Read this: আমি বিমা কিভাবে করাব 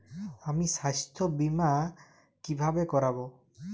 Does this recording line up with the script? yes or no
no